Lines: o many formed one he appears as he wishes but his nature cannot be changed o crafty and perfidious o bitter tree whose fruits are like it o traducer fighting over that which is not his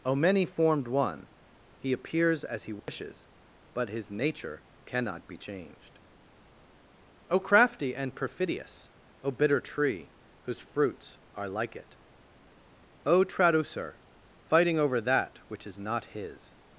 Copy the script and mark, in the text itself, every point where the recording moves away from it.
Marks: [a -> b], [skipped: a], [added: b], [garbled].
o many formed one he appears as he wishes but his nature cannot be changed o crafty and perfidious o bitter tree whose fruits are like it o traducer fighting over that which is not his